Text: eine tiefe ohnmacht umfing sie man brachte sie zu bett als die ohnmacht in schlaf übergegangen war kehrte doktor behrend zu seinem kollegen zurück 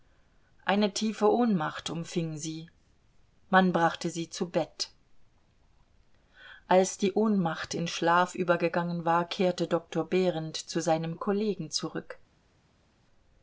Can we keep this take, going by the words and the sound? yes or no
yes